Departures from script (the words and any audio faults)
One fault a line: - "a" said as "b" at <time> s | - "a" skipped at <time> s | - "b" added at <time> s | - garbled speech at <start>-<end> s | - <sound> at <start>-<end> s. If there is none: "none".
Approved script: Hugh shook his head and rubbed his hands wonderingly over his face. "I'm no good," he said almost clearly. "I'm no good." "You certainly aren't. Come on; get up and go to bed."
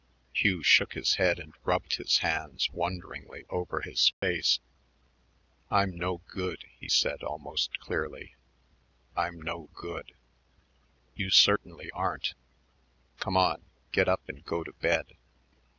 - dropout at 4.1-4.2 s